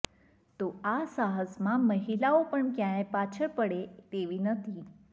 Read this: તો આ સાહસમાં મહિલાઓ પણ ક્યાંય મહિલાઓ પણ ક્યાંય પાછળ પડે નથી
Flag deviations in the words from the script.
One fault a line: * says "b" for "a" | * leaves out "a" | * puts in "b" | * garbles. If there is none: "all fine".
* leaves out "મહિલાઓ પણ ક્યાંય"
* puts in "તેવી"